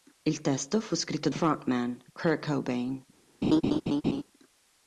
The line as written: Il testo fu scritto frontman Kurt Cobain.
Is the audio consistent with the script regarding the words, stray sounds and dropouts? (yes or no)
no